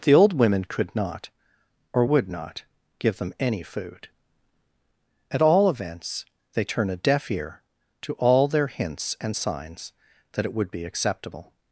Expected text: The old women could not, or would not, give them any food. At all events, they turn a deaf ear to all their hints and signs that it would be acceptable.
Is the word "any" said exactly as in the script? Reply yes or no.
yes